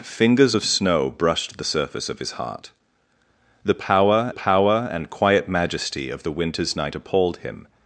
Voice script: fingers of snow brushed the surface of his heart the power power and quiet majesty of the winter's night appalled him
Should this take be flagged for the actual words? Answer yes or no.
no